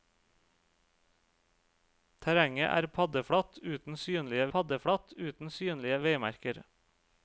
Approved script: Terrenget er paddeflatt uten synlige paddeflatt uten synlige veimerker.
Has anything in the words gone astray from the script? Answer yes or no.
no